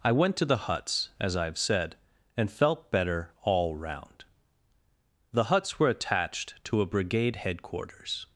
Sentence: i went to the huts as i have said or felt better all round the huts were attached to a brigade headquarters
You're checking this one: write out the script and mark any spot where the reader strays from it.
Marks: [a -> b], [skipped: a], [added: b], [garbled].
i went to the huts as i have said [or -> and] felt better all round the huts were attached to a brigade headquarters